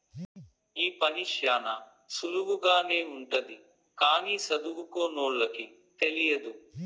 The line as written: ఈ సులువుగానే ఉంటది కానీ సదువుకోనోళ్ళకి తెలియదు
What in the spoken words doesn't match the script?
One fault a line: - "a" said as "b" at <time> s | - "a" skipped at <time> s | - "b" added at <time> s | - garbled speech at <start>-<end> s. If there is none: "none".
- "పని శ్యానా" added at 1.0 s